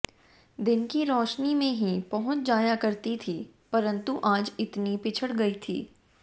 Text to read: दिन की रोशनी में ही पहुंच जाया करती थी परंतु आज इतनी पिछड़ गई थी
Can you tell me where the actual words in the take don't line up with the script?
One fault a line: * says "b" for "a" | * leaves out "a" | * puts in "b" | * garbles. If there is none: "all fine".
all fine